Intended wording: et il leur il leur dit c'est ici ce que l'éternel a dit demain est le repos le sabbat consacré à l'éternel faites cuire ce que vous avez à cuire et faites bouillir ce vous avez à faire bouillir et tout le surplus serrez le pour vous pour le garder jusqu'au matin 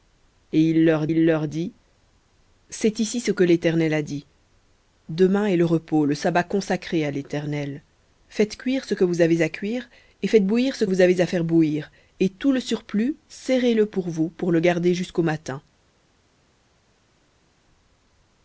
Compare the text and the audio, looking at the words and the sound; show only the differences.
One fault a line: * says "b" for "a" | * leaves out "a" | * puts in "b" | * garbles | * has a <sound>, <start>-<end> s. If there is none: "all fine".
all fine